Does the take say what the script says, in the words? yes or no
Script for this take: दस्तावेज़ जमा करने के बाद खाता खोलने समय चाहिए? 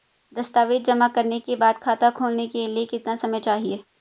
no